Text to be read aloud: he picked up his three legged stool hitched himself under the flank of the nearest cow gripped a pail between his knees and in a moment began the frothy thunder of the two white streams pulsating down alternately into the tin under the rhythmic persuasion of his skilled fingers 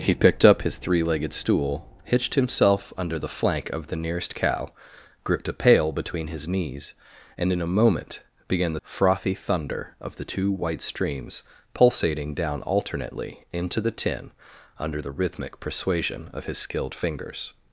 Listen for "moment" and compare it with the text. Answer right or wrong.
right